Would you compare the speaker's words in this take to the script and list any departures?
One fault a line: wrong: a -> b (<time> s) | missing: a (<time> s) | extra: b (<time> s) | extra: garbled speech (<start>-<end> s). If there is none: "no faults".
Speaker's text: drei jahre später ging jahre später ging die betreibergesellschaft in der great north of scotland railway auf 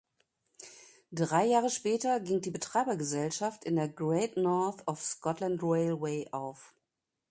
missing: jahre später ging (2.4 s)